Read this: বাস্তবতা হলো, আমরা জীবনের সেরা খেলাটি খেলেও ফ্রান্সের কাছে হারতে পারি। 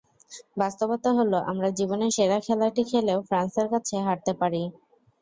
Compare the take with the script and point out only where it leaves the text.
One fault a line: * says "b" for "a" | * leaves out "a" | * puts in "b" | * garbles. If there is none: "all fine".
all fine